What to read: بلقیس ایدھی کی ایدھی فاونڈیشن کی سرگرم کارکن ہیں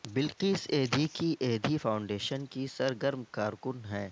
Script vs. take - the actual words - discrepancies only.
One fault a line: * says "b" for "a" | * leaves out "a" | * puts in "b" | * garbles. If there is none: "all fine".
all fine